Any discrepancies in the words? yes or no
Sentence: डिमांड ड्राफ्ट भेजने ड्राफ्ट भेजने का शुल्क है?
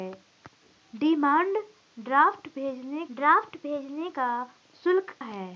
no